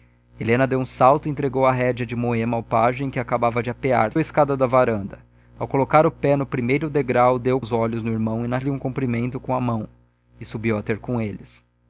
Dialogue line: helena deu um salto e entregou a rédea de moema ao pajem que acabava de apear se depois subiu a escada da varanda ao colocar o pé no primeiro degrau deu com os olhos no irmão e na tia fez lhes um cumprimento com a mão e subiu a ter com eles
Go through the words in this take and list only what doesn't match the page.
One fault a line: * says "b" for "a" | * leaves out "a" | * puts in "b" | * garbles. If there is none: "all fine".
* leaves out "se depois subiu"
* leaves out "com"
* leaves out "tia fez"